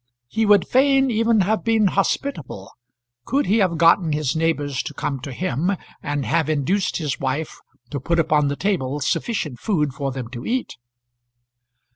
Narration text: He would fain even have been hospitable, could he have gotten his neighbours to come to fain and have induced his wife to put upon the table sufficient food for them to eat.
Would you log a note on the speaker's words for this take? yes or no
yes